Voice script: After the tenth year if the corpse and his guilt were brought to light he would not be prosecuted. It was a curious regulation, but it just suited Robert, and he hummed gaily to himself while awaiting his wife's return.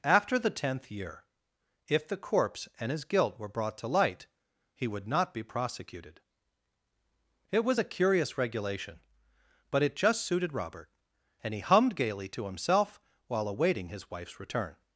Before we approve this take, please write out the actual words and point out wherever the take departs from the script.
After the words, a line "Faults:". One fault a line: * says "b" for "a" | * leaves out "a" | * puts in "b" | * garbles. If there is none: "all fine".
After the tenth year if the corpse and his guilt were brought to light he would not be prosecuted. It was a curious regulation, but it just suited Robert, and he hummed gaily to himself while awaiting his wife's return.
Faults:
all fine